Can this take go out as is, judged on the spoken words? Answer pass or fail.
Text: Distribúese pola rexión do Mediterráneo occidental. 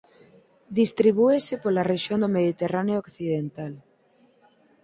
pass